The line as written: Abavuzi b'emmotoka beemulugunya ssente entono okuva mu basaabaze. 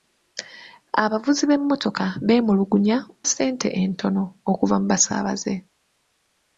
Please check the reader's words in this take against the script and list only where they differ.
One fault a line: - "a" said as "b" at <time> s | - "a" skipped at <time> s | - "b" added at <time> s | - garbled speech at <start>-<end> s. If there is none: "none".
none